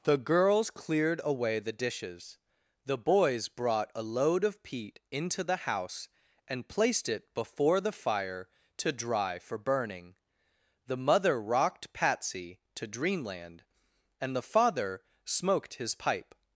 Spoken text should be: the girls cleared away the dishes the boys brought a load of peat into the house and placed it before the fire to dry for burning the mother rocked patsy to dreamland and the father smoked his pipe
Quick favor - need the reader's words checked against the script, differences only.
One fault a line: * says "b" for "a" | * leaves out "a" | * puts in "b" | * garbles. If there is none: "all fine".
all fine